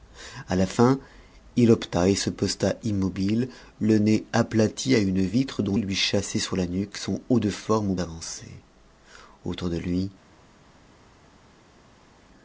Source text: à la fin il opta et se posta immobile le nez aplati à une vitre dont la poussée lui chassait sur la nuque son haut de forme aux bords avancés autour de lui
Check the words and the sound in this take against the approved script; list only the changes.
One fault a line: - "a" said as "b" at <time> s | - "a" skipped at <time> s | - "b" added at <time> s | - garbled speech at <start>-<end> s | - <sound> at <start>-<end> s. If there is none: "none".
- "la poussée" skipped at 5.8 s
- "bords" skipped at 8.0 s